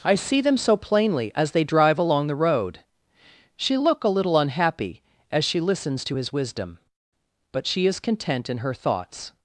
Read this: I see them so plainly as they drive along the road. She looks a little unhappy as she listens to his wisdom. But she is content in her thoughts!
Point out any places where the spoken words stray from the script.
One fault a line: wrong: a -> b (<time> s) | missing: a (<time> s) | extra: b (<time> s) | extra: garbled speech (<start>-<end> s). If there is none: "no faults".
wrong: looks -> look (3.8 s)